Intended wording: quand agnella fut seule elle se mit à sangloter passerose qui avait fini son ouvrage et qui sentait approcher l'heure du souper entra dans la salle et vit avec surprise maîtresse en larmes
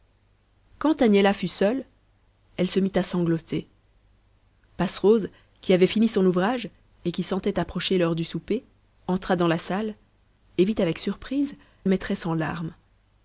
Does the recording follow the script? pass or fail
pass